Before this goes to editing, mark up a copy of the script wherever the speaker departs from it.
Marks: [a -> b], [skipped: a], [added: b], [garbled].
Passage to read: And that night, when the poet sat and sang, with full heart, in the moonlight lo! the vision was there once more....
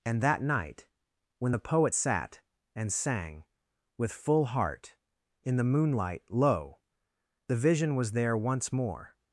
And that night, when the poet sat and sang, with full heart, in the moonlight lo! the vision was there once more....